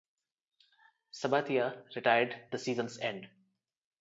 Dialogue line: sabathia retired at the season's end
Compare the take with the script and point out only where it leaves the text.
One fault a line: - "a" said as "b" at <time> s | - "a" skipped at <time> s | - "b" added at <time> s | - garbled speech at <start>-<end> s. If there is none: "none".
- "at" skipped at 2.4 s